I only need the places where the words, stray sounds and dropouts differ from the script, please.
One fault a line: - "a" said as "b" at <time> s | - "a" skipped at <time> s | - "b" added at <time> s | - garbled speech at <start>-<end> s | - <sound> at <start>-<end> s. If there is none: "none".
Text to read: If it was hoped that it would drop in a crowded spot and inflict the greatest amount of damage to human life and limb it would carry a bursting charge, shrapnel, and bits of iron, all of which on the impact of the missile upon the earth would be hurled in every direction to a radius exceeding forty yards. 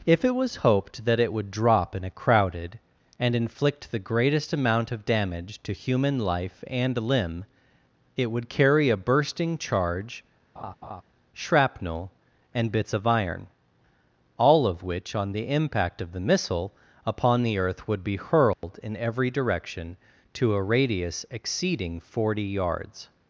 - "spot" skipped at 2.8 s
- laugh at 10.6-11.0 s
- dropout at 18.5-18.6 s